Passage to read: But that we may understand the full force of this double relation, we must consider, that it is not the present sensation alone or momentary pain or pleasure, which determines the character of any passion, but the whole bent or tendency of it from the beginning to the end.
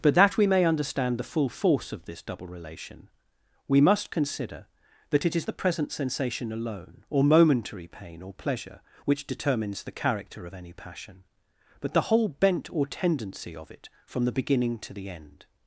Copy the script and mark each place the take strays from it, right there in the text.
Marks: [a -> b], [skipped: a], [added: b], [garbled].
But that we may understand the full force of this double relation, we must consider, that it is [skipped: not] the present sensation alone or momentary pain or pleasure, which determines the character of any passion, but the whole bent or tendency of it from the beginning to the end.